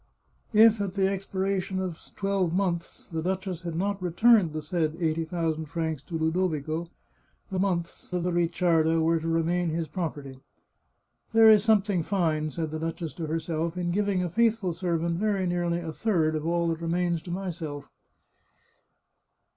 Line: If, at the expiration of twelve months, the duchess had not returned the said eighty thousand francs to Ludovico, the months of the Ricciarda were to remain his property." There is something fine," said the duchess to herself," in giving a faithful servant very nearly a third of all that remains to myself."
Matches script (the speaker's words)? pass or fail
pass